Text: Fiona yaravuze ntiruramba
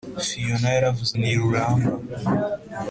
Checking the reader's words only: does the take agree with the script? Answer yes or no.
yes